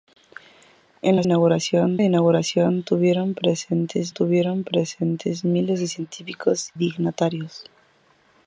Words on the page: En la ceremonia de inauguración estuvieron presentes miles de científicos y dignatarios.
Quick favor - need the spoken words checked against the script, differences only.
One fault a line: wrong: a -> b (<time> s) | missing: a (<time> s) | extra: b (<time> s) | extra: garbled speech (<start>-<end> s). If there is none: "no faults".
wrong: ceremonia -> inauguración (1.2 s)
extra: estuvieron presentes (4.1 s)
missing: y (6.7 s)